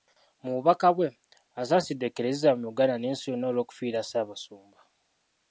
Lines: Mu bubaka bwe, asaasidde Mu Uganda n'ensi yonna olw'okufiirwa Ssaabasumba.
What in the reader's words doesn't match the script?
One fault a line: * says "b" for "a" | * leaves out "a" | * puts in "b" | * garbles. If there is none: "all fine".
* puts in "Eklezia"